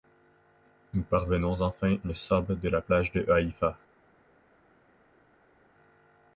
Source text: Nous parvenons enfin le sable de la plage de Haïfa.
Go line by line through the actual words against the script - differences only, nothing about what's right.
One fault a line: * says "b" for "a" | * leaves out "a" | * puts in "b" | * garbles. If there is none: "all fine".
all fine